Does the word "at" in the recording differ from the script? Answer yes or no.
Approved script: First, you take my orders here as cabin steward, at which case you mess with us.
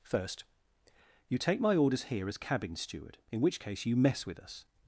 yes